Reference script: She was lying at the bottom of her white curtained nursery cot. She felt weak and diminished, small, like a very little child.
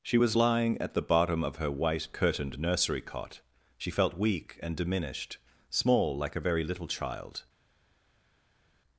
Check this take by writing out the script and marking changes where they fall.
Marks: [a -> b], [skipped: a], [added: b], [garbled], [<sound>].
She was lying at the bottom of her white curtained nursery cot. She felt weak and diminished, small, like a very little child.